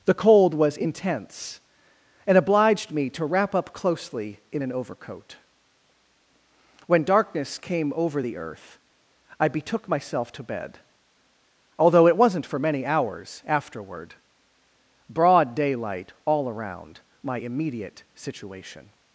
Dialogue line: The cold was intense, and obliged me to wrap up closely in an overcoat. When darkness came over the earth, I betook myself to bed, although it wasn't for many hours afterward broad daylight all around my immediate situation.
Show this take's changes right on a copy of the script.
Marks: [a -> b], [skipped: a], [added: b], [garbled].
The cold was intense, and obliged me to wrap up closely in an overcoat. When darkness came over the earth, I betook myself to bed, although it wasn't for many hours afterward broad daylight all around my immediate situation.